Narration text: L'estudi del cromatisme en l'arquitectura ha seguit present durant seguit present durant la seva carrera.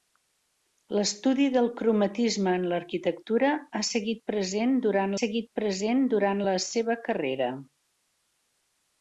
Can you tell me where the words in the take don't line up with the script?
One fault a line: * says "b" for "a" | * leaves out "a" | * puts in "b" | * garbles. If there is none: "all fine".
all fine